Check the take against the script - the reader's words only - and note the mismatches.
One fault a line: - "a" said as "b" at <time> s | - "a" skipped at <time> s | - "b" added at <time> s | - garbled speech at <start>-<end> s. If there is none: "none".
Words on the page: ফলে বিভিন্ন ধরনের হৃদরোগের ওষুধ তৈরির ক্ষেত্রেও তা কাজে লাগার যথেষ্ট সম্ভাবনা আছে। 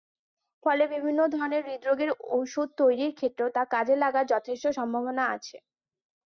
none